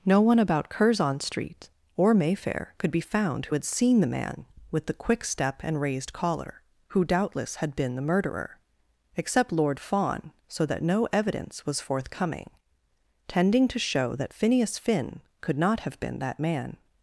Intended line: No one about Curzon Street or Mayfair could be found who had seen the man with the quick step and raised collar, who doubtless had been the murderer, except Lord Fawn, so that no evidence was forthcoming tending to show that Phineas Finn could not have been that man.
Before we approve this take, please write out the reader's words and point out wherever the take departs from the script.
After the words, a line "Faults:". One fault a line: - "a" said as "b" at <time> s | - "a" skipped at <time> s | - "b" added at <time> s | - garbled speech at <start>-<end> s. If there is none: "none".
No one about Curzon Street or Mayfair could be found who had seen the man with the quick step and raised collar, who doubtless had been the murderer, except Lord Fawn, so that no evidence was forthcoming tending to show that Phineas Finn could not have been that man.
Faults:
none